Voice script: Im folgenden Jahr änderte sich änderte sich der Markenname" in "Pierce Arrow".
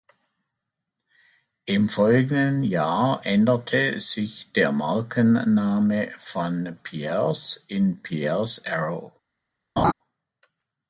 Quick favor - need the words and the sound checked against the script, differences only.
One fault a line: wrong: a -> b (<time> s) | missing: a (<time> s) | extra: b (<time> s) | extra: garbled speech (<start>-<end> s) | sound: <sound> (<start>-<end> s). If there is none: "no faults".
wrong: änderte sich der Markenname -> der Markenname von Pierce (4.5 s)
sound: laugh (9.8-9.9 s)